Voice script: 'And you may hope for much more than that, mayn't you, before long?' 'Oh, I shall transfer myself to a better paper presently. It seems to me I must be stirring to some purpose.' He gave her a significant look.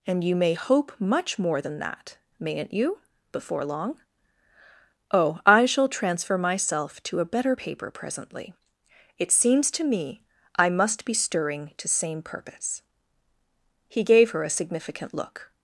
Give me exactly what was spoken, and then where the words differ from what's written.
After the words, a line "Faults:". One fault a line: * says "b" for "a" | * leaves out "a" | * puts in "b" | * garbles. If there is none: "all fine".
'And you may hope much more than that, mayn't you, before long?' 'Oh, I shall transfer myself to a better paper presently. It seems to me I must be stirring to same purpose.' He gave her a significant look.
Faults:
* leaves out "for"
* says "same" for "some"